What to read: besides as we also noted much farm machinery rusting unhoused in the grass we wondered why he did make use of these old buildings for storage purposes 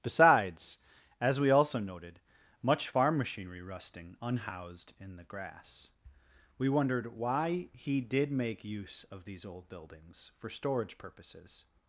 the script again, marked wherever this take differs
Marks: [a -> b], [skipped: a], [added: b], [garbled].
besides as we also noted much farm machinery rusting unhoused in the grass we wondered why he did make use of these old buildings for storage purposes